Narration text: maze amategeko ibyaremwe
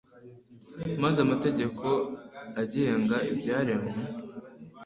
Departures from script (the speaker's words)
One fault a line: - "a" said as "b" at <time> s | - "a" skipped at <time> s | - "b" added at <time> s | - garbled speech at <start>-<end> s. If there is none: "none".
- "agenga" added at 2.6 s